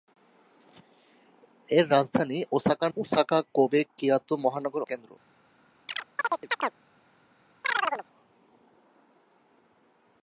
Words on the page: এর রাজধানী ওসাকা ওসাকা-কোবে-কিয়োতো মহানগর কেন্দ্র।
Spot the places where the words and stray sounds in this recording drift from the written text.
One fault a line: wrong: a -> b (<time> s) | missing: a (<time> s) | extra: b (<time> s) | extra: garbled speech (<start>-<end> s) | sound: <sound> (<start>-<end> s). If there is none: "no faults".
sound: chirp (5.9-6.8 s)
sound: chirp (7.6-8.1 s)